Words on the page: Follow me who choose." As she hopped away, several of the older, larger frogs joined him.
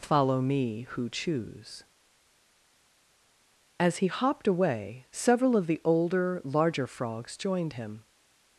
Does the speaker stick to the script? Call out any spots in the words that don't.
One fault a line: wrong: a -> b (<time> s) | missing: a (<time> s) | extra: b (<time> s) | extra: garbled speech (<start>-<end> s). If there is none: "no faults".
wrong: she -> he (4.0 s)